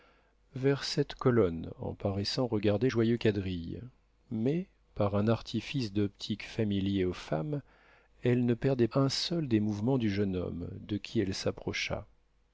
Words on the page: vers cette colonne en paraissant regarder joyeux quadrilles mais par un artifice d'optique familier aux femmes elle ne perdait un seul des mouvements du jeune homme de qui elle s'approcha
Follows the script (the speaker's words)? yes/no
yes